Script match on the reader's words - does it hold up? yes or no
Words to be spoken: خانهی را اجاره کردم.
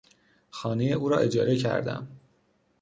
no